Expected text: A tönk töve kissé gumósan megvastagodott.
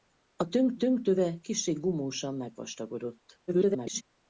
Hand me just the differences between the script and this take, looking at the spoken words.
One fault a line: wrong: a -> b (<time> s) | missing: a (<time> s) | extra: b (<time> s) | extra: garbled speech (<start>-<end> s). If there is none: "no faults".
extra: tönk (0.7 s)
extra: garbled speech (3.5-4.0 s)